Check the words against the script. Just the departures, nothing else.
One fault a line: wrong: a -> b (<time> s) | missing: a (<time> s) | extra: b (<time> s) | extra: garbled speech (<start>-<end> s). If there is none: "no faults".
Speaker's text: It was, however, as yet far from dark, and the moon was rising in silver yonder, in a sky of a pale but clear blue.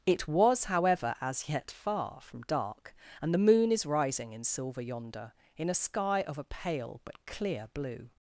wrong: was -> is (3.7 s)